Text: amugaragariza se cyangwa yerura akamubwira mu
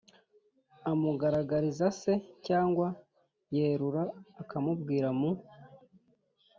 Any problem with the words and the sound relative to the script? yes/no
no